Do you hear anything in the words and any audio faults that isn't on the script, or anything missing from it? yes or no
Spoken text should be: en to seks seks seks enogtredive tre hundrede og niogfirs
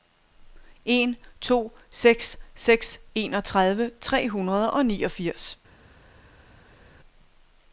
yes